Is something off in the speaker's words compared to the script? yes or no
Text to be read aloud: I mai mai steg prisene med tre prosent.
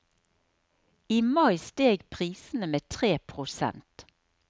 yes